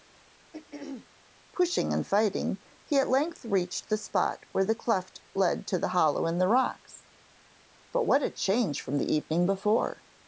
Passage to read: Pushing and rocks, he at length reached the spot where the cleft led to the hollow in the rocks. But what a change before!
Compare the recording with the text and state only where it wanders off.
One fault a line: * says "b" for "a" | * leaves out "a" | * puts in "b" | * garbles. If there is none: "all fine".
* says "fighting" for "rocks"
* puts in "from the evening"